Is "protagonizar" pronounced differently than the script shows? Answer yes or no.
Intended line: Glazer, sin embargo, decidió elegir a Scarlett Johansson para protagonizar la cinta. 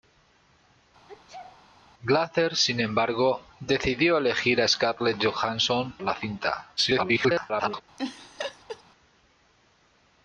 yes